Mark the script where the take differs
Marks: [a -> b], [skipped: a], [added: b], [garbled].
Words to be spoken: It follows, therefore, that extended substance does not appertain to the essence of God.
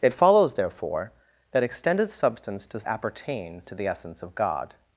It follows, therefore, that extended substance does [skipped: not] appertain to the essence of God.